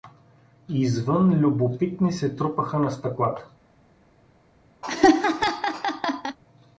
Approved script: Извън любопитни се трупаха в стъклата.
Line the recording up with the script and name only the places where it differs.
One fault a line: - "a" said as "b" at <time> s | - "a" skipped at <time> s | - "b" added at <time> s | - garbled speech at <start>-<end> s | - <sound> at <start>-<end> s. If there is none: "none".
- "в" said as "на" at 2.8 s
- laugh at 4.8-6.4 s